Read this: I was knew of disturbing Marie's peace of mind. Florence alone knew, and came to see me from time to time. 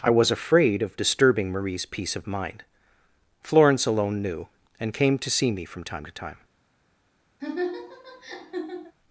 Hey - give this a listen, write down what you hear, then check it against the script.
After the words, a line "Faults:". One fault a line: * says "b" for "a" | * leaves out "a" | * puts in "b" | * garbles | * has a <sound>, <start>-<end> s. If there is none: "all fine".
I was afraid of disturbing Marie's peace of mind. Florence alone knew, and came to see me from time to time.
Faults:
* says "afraid" for "knew"
* has a laugh, 7.4-9.0 s